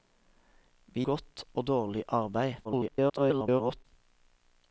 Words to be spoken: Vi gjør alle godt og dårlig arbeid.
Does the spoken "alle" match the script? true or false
false